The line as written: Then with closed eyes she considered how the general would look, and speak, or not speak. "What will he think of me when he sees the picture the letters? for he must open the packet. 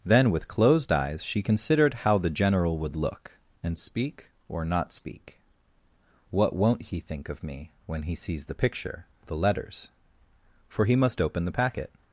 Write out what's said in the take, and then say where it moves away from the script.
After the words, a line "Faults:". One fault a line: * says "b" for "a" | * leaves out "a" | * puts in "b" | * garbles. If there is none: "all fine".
Then with closed eyes she considered how the general would look, and speak, or not speak. "What won't he think of me when he sees the picture the letters? for he must open the packet.
Faults:
* says "won't" for "will"